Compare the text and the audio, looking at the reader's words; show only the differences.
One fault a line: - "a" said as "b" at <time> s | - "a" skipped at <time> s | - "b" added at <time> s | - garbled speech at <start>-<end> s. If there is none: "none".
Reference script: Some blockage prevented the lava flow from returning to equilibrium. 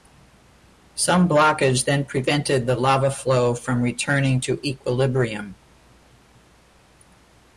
- "then" added at 1.9 s